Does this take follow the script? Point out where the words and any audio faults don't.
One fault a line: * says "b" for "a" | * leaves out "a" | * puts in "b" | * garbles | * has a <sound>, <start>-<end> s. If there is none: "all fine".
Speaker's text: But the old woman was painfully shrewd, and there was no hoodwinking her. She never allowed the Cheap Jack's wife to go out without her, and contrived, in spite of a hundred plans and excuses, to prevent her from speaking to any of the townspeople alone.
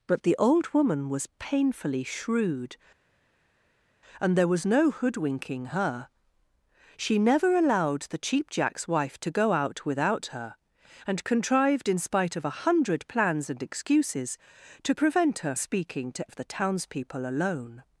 * leaves out "from"
* leaves out "any"